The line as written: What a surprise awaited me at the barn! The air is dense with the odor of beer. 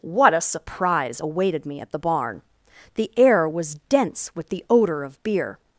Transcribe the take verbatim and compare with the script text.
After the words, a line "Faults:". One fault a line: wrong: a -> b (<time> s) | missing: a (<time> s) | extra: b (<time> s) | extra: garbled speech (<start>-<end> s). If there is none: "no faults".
What a surprise awaited me at the barn! The air was dense with the odor of beer.
Faults:
wrong: is -> was (3.5 s)